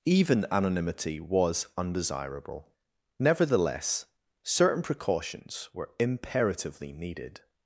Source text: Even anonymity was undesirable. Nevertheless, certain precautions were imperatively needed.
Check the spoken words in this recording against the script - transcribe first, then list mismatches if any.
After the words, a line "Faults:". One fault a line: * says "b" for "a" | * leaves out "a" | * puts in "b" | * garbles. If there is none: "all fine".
Even anonymity was undesirable. Nevertheless, certain precautions were imperatively needed.
Faults:
all fine